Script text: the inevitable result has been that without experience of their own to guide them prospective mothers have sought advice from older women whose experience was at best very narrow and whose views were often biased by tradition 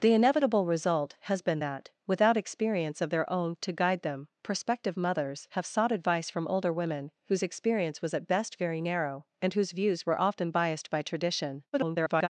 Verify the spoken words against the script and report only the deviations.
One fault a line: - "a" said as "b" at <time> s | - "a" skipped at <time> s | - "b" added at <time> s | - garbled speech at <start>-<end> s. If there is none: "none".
- garbled speech at 11.7-12.3 s